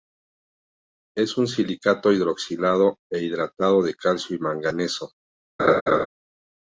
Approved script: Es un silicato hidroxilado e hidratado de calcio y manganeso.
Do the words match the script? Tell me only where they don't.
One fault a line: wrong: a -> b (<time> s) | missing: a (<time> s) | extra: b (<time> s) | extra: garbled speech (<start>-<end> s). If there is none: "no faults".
no faults